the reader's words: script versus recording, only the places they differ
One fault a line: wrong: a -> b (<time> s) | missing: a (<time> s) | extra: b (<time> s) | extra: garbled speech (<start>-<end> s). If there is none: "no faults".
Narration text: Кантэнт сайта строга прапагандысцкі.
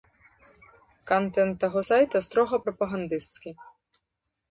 extra: таго (1.6 s)